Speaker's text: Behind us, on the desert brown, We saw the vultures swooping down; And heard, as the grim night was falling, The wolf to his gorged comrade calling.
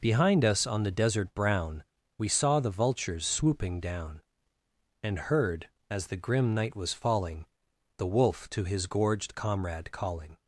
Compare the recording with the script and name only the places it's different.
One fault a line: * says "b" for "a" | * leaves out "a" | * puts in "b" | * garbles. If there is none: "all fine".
all fine